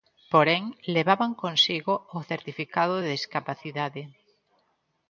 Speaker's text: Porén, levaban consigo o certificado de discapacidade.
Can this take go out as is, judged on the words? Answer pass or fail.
pass